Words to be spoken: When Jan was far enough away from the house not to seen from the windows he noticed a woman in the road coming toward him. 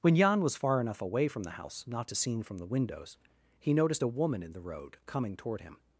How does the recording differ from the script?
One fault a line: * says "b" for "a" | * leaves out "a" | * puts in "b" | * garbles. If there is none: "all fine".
all fine